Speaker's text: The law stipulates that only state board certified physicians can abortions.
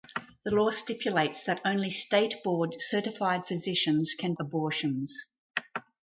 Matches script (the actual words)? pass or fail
pass